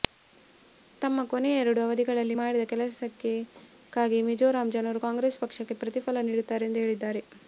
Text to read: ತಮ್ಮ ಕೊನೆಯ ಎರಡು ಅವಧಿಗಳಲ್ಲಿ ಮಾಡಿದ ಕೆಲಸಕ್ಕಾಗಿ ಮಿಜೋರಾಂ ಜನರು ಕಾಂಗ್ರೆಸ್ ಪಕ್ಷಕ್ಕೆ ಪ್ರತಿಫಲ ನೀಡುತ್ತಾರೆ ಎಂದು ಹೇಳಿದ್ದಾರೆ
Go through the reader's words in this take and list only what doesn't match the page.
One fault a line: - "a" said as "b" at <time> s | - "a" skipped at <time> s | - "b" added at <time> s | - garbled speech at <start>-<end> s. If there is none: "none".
none